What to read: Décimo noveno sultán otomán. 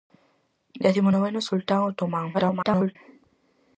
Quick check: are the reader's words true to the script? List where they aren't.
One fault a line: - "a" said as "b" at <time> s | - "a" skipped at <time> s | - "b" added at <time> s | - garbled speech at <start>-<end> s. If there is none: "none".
- garbled speech at 2.3-3.0 s